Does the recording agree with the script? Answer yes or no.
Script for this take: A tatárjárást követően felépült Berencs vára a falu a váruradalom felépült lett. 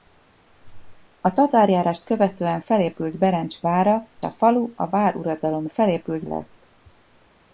yes